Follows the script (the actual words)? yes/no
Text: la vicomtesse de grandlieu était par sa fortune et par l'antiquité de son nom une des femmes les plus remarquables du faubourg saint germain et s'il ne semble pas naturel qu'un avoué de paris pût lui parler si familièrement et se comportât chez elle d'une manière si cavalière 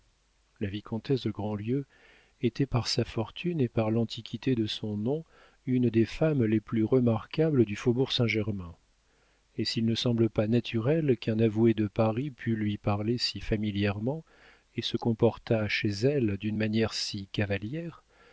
yes